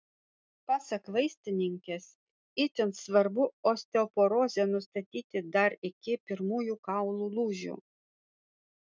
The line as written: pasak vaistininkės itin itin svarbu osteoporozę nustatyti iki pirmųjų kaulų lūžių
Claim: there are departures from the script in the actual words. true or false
true